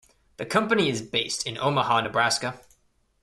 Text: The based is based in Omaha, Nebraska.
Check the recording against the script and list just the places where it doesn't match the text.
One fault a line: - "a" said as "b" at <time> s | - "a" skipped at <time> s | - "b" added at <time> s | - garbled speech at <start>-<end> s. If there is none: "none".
- "based" said as "company" at 0.5 s